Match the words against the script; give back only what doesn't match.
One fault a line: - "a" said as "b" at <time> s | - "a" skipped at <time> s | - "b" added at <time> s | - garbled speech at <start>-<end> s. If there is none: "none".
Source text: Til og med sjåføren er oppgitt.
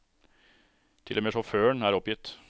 none